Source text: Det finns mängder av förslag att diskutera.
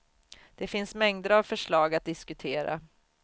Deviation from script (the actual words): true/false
false